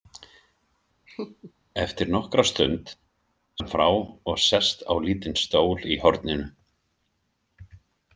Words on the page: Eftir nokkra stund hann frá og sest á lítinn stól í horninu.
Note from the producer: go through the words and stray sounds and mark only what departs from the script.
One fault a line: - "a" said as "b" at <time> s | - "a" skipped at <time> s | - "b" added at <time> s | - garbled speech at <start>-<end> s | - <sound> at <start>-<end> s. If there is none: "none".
- laugh at 1.1-1.5 s